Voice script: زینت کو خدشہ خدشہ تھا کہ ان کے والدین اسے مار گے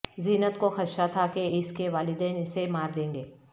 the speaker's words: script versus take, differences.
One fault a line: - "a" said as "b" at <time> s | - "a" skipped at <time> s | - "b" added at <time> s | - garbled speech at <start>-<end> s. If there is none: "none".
- "خدشہ" skipped at 1.1 s
- "ان" said as "اس" at 1.5 s
- "دیں" added at 3.0 s